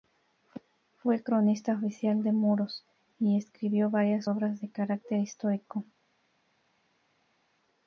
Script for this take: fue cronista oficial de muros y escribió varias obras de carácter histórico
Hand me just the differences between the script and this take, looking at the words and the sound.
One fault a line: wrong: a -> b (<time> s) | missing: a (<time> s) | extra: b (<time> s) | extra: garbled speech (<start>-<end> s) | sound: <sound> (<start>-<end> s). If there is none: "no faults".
no faults